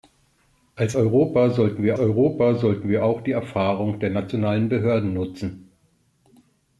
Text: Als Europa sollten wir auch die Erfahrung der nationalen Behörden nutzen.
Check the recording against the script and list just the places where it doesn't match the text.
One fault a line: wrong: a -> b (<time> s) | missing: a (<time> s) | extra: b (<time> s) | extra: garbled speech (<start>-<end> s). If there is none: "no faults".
extra: Europa sollten wir (2.0 s)